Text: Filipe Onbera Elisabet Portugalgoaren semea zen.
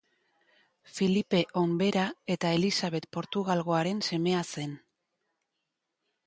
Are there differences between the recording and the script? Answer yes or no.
yes